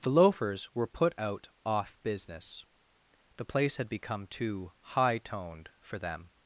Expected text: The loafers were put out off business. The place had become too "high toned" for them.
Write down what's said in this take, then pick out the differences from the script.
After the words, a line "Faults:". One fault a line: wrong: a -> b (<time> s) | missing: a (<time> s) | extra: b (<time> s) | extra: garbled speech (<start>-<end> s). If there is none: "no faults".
The loafers were put out off business. The place had become too "high toned" for them.
Faults:
no faults